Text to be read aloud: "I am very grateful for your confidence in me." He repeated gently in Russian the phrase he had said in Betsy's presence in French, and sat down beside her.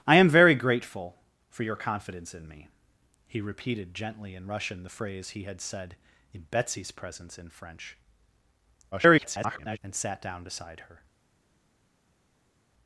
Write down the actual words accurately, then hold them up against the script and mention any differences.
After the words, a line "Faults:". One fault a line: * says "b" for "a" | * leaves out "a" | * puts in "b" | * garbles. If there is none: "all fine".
"I am very grateful for your confidence in me." He repeated gently in Russian the phrase he had said in Betsy's presence in French, [garbled] and sat down beside her.
Faults:
* garbles